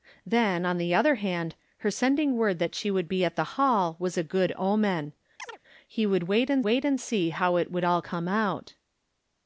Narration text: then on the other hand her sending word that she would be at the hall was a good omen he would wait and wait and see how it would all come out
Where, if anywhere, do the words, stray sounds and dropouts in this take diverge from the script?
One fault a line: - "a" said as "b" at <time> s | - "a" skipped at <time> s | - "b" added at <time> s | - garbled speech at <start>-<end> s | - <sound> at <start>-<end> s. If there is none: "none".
- chirp at 5.4-5.6 s